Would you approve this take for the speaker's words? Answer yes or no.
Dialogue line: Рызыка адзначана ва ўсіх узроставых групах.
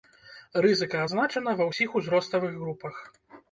yes